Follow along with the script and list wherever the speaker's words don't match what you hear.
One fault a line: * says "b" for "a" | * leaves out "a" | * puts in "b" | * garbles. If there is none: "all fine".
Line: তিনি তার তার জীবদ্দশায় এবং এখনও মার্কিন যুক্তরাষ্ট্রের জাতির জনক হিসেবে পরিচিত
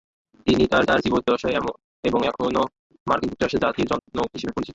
all fine